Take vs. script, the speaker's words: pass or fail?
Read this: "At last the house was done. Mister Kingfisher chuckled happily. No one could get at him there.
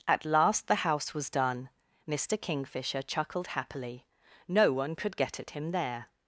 pass